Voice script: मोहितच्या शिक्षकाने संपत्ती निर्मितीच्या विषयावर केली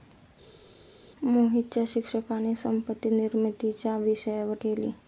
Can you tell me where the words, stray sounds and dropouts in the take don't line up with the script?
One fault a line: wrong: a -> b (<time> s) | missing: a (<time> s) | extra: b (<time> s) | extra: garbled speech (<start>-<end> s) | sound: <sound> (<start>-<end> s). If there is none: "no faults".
no faults